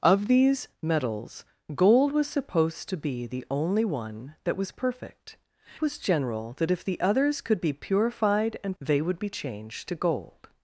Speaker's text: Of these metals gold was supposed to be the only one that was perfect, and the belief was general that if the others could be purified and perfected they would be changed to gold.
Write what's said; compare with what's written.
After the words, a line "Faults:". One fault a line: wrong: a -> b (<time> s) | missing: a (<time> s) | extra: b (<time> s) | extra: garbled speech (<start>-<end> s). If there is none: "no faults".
Of these metals gold was supposed to be the only one that was perfect, was general that if the others could be purified and they would be changed to gold.
Faults:
missing: and the belief (5.4 s)
missing: perfected (8.8 s)